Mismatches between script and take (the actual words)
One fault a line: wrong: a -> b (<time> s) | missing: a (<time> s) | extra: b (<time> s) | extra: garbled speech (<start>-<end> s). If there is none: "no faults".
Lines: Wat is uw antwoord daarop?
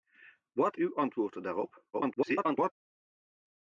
missing: is (0.8 s)
extra: garbled speech (1.9-2.7 s)